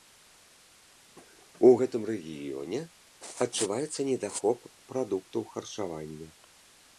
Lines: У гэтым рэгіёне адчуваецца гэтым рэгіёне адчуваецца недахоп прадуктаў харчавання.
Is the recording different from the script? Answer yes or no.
yes